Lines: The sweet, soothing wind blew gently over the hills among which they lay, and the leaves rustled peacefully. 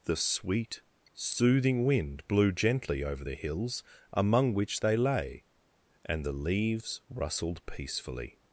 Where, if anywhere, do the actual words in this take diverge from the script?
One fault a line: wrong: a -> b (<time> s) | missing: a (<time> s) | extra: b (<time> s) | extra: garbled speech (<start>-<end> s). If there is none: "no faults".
no faults